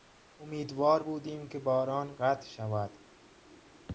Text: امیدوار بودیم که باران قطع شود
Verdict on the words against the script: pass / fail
pass